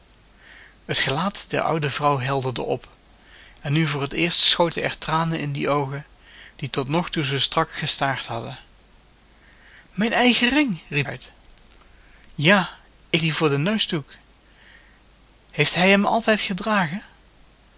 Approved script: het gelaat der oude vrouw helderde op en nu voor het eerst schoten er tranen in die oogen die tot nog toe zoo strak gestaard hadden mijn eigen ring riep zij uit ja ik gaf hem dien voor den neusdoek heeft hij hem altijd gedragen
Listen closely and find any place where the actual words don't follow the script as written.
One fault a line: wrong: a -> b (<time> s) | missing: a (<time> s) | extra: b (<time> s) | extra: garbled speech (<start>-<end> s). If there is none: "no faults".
missing: zij (11.1 s)
missing: gaf hem (13.2 s)